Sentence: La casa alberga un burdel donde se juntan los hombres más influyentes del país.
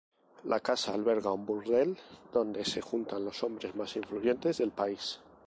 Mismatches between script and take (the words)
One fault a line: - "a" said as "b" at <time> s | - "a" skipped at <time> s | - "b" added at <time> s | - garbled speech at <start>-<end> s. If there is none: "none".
none